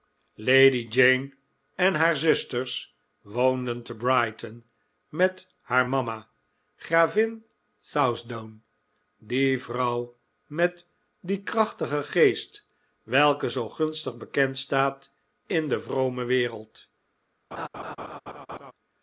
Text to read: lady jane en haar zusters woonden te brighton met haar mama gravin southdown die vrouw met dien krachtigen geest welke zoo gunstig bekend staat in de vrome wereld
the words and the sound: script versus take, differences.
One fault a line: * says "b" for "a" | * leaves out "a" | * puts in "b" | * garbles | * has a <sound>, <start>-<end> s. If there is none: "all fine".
* has a laugh, 17.5-18.7 s